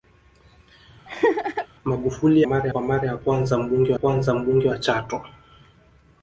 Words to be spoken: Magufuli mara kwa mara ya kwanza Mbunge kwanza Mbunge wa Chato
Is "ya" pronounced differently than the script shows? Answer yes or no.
no